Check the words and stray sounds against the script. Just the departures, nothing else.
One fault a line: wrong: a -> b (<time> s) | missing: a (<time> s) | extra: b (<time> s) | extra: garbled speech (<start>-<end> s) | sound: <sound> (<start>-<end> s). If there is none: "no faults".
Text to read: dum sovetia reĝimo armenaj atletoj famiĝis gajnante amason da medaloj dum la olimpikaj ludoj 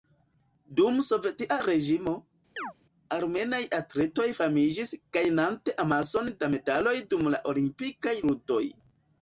sound: chirp (2.6-2.7 s)